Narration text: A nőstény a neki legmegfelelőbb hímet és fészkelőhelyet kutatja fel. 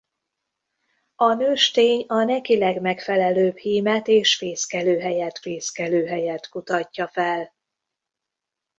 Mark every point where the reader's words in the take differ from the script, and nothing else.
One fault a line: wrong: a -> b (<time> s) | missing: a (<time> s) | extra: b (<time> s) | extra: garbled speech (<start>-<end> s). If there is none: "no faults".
extra: fészkelőhelyet (5.4 s)